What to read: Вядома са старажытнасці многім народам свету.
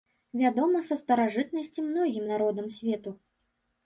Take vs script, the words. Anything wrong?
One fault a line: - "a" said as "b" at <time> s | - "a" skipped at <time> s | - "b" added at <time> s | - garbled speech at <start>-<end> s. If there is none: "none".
none